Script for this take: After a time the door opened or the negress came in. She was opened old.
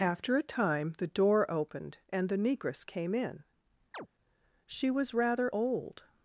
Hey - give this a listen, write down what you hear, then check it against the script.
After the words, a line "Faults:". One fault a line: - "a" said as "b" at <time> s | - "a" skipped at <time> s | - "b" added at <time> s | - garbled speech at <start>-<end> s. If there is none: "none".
After a time the door opened and the negress came in. She was rather old.
Faults:
- "or" said as "and" at 2.1 s
- "opened" said as "rather" at 5.1 s